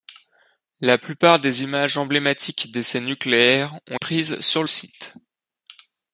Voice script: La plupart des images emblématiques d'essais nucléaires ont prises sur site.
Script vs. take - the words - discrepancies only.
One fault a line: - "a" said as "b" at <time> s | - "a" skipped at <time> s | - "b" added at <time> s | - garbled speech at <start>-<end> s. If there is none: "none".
none